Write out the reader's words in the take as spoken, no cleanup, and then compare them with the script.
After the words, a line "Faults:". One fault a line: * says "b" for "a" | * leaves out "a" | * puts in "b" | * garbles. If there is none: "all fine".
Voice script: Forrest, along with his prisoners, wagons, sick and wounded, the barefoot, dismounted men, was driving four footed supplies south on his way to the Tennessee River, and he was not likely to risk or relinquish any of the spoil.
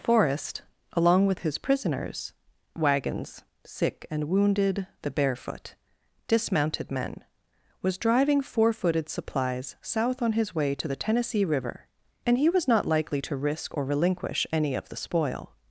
Forrest, along with his prisoners, wagons, sick and wounded, the barefoot, dismounted men, was driving four footed supplies south on his way to the Tennessee River, and he was not likely to risk or relinquish any of the spoil.
Faults:
all fine